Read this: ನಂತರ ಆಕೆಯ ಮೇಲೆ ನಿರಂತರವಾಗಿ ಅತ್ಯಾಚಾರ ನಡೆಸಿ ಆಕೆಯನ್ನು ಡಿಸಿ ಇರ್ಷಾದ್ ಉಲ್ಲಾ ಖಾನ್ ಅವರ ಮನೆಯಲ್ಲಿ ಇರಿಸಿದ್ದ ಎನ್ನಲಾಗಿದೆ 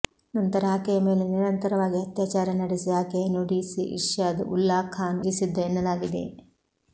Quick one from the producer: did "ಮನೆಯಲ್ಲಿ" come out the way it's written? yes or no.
no